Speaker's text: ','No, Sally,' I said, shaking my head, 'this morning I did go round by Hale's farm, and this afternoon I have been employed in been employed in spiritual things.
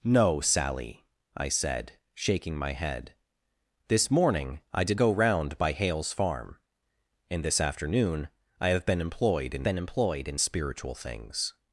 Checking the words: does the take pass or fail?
pass